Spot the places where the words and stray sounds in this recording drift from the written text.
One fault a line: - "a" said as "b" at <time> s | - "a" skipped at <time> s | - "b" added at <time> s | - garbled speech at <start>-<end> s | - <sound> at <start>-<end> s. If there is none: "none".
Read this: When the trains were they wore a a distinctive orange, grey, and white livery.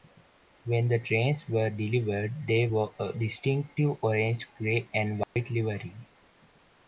- "delivered" added at 1.7 s
- "a" skipped at 3.1 s
- dropout at 5.2-5.4 s